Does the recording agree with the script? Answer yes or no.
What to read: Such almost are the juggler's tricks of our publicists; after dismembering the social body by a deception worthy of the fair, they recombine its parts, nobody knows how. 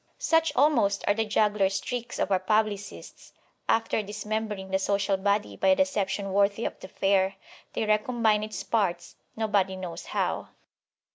yes